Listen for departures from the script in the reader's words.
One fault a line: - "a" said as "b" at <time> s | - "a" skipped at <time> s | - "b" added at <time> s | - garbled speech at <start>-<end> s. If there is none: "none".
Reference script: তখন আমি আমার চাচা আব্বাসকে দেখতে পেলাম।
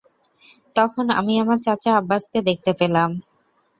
none